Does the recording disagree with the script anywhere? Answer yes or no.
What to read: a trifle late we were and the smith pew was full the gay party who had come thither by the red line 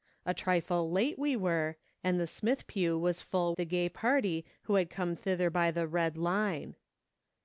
no